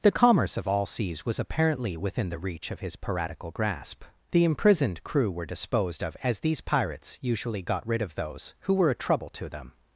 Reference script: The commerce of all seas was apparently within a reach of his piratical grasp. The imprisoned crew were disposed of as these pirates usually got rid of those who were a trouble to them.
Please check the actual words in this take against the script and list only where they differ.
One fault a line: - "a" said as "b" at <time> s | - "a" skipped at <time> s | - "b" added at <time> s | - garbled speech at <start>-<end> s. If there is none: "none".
- "a" said as "the" at 2.3 s